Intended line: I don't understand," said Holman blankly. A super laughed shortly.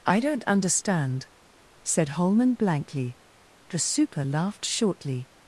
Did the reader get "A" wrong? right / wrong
wrong